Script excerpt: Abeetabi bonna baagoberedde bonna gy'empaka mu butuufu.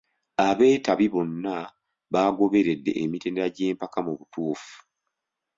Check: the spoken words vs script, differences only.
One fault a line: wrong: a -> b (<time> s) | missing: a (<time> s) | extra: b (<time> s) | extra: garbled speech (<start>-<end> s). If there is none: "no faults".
wrong: bonna -> emitendera (3.0 s)